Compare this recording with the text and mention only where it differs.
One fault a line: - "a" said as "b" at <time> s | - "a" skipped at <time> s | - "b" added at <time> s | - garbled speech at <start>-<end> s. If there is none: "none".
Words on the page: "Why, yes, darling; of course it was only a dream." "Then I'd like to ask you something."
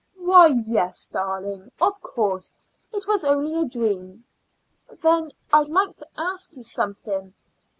none